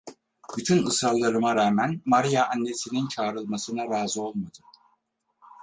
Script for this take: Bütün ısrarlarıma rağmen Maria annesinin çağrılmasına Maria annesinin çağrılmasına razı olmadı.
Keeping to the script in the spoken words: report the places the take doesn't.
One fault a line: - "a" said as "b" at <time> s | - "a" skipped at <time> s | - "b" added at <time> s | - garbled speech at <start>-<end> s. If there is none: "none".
- "Maria annesinin çağrılmasına" skipped at 3.9 s